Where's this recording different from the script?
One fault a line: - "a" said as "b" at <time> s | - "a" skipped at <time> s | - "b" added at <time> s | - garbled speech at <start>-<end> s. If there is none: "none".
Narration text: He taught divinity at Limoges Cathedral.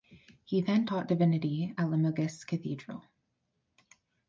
- "then" added at 0.6 s